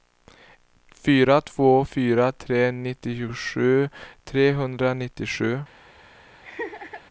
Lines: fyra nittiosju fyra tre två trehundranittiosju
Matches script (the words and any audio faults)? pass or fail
fail